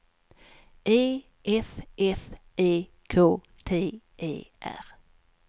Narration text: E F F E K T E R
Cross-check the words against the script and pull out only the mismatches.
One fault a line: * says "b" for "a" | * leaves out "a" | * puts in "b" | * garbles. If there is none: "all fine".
all fine